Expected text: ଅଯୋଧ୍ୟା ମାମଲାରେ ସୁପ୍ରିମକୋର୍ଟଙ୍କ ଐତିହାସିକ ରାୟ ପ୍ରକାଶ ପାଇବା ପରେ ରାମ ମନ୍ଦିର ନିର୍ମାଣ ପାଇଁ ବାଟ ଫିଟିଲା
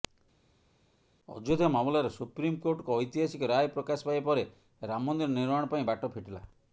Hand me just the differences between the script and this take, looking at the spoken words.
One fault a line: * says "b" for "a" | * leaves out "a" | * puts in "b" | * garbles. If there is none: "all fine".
all fine